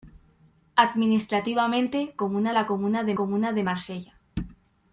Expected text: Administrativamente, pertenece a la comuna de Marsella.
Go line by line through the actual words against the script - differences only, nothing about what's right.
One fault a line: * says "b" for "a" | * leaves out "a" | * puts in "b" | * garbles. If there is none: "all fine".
* says "comuna" for "pertenece"
* puts in "comuna de"